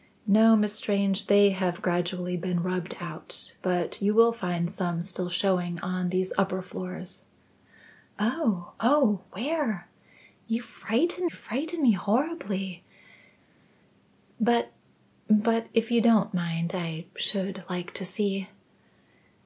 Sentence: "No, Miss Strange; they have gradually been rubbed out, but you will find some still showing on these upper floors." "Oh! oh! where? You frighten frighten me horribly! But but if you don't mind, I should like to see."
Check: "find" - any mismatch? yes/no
no